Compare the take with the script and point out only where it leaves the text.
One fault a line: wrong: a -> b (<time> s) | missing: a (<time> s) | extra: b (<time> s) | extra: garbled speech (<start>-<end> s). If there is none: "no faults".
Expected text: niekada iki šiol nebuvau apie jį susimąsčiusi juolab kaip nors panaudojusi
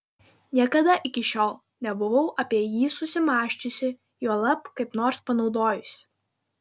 no faults